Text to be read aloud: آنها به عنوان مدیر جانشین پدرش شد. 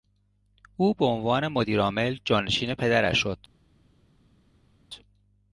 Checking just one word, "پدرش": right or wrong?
right